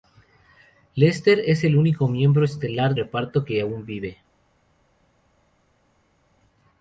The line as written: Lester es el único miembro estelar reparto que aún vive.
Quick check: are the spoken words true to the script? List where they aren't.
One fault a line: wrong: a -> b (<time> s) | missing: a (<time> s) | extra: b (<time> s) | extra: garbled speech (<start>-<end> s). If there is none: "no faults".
no faults